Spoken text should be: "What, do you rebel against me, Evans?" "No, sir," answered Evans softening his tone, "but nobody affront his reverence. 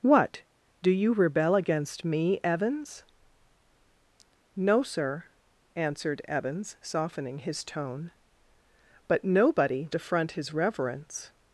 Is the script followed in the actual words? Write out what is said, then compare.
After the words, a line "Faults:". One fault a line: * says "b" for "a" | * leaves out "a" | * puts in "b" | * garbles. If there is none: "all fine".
"What, do you rebel against me, Evans?" "No, sir," answered Evans softening his tone, "but nobody affront his reverence.
Faults:
all fine